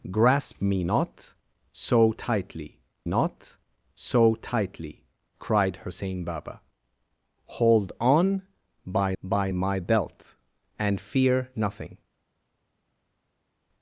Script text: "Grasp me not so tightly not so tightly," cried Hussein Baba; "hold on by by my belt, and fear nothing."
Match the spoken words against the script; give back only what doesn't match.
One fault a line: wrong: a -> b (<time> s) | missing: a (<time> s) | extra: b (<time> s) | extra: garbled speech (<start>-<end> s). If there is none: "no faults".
no faults